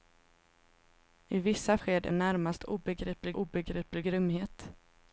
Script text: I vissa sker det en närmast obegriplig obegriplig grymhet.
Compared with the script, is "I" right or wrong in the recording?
right